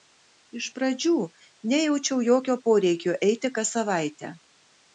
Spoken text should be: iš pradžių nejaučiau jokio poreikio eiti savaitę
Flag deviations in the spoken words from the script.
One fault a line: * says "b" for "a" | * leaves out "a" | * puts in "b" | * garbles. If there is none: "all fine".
* puts in "kas"